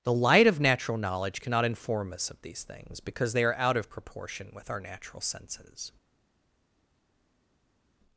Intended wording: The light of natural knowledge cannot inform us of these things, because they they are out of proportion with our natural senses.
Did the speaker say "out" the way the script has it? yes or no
yes